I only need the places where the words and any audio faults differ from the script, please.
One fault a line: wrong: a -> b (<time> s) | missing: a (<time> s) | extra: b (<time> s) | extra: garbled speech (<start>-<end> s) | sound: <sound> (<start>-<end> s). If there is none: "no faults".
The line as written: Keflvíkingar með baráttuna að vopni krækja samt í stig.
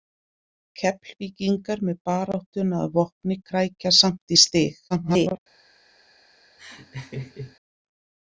extra: garbled speech (4.9-5.4 s)
sound: laugh (6.6-7.6 s)